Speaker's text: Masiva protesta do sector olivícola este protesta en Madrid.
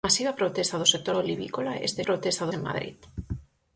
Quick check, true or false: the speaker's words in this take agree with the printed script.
true